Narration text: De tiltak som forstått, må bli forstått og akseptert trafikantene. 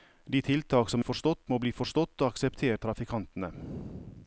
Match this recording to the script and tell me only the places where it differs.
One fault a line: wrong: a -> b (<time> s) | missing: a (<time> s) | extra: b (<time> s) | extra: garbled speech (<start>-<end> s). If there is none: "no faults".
no faults